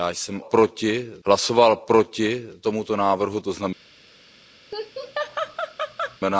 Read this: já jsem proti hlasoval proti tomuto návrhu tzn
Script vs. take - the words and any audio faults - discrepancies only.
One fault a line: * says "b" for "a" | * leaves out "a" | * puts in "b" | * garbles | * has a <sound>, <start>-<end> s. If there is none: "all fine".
* has a laugh, 4.7-6.2 s